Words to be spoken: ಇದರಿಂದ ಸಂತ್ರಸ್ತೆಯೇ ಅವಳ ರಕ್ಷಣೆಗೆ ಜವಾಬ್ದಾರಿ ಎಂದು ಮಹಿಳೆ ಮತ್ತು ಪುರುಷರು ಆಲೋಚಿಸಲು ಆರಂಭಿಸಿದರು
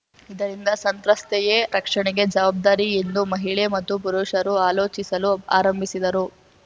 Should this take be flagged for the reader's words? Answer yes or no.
yes